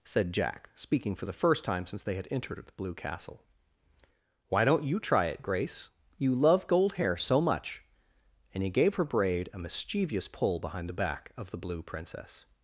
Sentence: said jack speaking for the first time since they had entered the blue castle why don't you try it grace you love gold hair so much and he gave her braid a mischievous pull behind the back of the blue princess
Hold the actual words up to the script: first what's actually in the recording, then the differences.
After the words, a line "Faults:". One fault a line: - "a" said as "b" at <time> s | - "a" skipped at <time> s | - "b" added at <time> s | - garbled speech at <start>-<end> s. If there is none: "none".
said jack speaking for the first time since they had entered the blue castle why don't you try it grace you love gold hair so much and he gave her braid a mischievous pull behind the back of the blue princess
Faults:
none